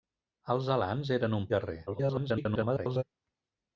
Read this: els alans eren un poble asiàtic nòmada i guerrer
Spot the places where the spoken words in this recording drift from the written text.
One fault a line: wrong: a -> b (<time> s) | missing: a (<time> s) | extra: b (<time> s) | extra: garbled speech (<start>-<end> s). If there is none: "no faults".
missing: poble asiàtic nòmada (1.4 s)
extra: garbled speech (1.9-3.0 s)